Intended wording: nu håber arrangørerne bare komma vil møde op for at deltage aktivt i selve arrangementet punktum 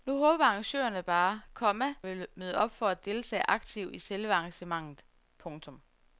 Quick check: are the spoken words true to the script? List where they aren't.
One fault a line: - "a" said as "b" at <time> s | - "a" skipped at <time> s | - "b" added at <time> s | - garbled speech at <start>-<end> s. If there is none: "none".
none